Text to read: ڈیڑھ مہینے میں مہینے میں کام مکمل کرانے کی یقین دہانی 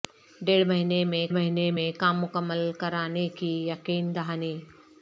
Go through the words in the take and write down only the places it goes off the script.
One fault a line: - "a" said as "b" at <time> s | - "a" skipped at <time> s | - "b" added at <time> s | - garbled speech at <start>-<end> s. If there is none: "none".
none